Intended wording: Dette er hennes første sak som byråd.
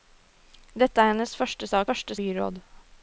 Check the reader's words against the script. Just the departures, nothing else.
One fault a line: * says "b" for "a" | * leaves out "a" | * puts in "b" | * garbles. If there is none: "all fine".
* says "første" for "som"